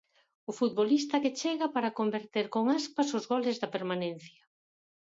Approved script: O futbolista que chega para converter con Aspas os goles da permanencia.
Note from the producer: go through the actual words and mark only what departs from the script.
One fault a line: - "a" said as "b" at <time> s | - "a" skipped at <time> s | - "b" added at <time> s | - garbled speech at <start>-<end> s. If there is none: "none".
none